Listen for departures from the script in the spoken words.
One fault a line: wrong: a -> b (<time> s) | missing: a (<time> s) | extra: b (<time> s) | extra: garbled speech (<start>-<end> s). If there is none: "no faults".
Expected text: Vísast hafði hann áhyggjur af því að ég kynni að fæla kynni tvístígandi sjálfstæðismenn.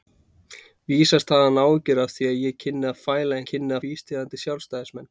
no faults